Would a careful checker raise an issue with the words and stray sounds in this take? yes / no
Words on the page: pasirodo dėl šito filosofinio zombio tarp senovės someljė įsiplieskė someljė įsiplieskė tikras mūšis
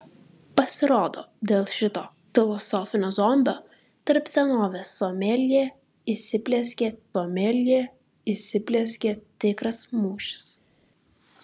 no